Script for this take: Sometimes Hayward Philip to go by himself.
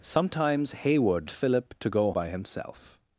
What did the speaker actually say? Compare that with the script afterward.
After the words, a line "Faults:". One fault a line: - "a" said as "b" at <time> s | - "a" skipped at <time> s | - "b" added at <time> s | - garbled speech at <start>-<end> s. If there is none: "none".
Sometimes Hayward Philip to go by himself.
Faults:
none